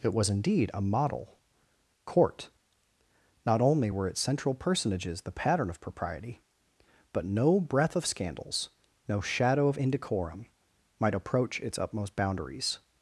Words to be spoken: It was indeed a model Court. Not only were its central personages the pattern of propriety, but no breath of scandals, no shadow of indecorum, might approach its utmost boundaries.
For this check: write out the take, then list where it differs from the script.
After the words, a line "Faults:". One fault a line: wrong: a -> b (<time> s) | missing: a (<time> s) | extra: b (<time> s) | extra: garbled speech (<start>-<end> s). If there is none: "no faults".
It was indeed a model Court. Not only were its central personages the pattern of propriety, but no breath of scandals, no shadow of indecorum, might approach its utmost boundaries.
Faults:
no faults